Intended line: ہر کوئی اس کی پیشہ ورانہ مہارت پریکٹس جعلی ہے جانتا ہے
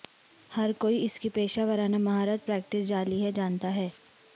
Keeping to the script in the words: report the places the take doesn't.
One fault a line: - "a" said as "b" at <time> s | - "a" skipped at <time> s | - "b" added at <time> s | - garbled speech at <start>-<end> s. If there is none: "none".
none